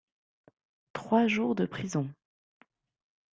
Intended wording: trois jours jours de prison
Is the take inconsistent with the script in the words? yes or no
yes